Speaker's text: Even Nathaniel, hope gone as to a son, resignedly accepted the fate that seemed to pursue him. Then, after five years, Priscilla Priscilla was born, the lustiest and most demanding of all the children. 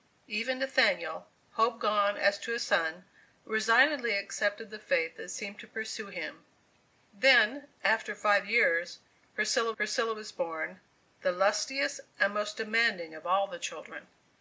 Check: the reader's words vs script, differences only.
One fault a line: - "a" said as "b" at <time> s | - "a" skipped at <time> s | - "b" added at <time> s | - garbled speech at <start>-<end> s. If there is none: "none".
none